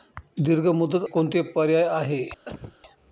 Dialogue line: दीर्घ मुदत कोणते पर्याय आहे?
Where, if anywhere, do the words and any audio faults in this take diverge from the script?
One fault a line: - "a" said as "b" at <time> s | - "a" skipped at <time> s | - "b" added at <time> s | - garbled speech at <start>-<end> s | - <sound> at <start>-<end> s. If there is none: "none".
- cough at 2.5-2.8 s